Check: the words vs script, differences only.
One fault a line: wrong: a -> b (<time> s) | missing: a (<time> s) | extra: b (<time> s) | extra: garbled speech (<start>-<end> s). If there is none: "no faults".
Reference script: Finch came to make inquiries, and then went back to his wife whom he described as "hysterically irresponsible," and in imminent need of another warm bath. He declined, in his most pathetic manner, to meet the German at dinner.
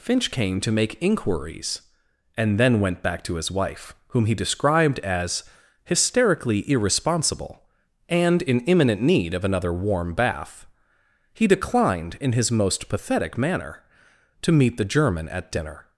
no faults